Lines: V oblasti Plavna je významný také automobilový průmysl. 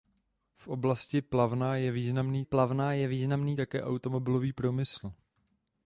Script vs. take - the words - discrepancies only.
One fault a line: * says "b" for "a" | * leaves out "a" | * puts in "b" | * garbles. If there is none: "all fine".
* puts in "Plavna je významný"